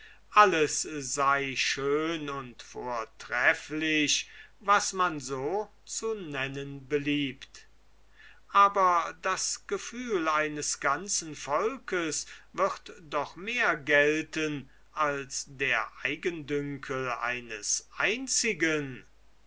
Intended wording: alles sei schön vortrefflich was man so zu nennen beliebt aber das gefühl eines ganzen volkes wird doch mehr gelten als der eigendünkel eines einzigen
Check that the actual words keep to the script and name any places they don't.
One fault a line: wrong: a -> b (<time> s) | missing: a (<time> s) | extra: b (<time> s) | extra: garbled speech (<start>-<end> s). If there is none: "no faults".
extra: und (2.3 s)